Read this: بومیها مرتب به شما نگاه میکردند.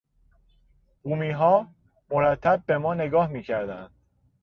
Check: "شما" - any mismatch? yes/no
yes